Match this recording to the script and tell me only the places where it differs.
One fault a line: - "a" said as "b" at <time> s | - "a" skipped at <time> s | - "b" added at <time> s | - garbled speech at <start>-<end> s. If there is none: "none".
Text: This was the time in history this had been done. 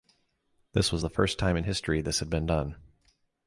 - "first" added at 1.1 s